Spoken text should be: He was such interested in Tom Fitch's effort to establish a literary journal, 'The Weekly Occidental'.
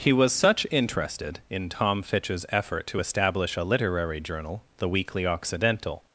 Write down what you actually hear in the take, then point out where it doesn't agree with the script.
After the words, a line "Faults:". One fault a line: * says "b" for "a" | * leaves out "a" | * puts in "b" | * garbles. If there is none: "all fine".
He was such interested in Tom Fitch's effort to establish a literary journal, 'The Weekly Occidental'.
Faults:
all fine